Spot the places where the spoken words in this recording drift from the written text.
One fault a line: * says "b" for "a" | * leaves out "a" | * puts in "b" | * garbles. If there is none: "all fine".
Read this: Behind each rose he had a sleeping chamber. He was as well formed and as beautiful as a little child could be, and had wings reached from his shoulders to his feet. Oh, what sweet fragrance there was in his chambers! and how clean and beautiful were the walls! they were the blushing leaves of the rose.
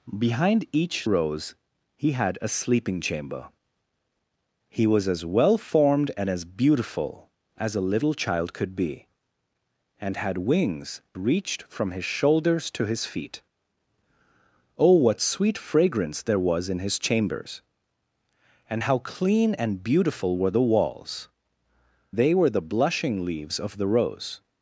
all fine